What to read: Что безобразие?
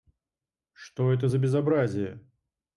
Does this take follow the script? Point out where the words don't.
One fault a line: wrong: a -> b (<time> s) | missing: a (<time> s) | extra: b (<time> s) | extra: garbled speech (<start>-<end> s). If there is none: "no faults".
extra: это за (1.1 s)